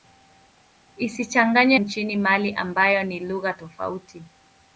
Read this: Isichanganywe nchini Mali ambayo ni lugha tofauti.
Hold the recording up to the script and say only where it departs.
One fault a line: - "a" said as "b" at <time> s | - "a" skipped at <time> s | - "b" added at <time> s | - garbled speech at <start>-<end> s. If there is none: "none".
none